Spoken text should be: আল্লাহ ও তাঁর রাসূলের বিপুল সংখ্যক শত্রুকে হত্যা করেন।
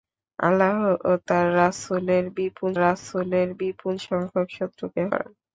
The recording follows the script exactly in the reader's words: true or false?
false